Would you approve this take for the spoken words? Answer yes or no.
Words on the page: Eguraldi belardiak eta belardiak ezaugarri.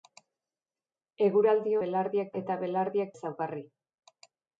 yes